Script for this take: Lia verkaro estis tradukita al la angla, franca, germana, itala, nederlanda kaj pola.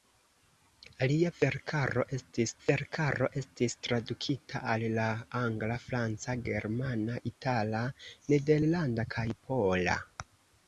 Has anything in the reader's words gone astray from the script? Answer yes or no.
yes